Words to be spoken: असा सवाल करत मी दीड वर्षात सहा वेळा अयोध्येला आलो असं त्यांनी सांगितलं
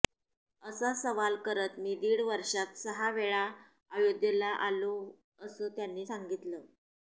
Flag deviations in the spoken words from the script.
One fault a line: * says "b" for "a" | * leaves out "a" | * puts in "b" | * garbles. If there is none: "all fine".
all fine